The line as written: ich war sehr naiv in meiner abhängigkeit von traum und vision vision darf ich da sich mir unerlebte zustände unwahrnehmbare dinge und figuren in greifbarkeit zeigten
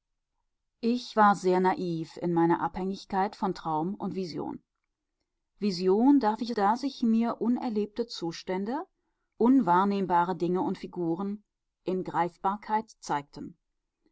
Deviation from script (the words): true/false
false